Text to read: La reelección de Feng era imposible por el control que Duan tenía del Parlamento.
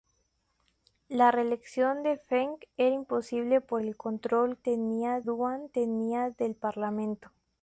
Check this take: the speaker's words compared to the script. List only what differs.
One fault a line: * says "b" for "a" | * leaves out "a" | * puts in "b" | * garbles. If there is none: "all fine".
* says "tenía" for "que"